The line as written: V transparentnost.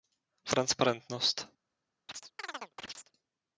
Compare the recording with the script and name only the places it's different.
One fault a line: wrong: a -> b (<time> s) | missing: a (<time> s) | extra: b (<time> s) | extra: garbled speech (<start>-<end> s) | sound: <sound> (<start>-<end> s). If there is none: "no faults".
sound: chirp (2.1-3.1 s)